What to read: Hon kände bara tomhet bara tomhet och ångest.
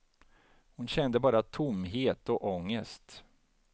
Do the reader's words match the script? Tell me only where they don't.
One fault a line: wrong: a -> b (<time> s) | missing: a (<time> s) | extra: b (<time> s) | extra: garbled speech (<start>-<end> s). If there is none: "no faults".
missing: bara tomhet (2.3 s)